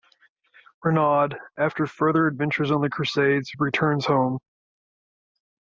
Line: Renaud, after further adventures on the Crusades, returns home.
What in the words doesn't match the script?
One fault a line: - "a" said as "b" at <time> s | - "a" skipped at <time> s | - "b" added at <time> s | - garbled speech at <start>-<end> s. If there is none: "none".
none